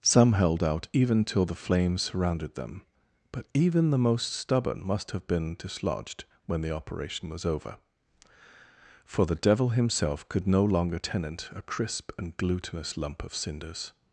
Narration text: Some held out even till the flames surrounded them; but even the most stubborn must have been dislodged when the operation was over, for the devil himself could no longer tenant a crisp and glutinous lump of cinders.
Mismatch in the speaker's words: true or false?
false